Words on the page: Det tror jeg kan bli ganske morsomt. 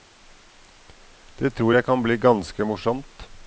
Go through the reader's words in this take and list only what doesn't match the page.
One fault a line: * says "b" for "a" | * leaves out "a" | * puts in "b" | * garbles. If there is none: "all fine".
all fine